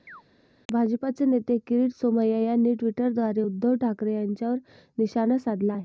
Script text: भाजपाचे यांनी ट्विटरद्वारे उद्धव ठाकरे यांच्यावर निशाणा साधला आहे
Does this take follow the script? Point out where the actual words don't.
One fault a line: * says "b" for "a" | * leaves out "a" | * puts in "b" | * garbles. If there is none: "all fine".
* puts in "नेते किरीट सोमय्या"